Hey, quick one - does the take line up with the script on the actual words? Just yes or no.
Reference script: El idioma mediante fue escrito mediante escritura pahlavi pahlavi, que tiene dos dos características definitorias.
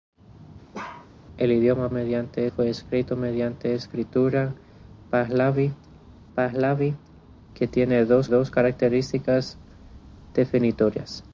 yes